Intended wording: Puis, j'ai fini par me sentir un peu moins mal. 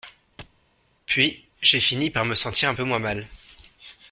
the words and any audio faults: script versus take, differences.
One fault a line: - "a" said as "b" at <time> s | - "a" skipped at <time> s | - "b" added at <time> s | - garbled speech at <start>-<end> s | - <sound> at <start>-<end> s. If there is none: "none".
- thud at 0.4-0.6 s